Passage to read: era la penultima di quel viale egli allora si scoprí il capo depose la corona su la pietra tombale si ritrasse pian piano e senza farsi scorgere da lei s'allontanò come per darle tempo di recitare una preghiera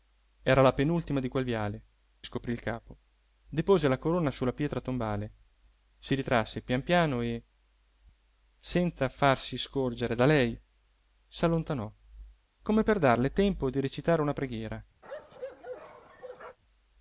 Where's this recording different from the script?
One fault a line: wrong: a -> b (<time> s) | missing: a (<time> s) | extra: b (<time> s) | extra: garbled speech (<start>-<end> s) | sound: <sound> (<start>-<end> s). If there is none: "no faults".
missing: egli allora si (1.8 s)
sound: bark (15.0-16.6 s)